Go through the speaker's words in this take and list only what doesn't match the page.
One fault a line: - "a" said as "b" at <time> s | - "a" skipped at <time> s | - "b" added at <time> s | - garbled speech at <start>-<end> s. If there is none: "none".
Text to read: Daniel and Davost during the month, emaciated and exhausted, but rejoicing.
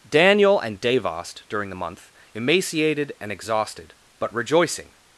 none